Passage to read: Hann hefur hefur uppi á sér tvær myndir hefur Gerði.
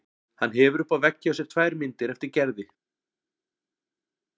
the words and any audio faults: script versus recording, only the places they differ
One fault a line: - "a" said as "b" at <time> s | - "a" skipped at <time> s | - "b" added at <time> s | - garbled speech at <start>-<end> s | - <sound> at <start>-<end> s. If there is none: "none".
- "hefur" skipped at 0.8 s
- "vegg hjá" added at 1.1 s
- "hefur" said as "eftir" at 2.2 s